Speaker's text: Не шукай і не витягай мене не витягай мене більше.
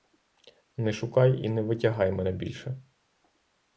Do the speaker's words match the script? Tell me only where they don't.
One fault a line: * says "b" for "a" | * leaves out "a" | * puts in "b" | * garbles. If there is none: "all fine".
* leaves out "не витягай мене"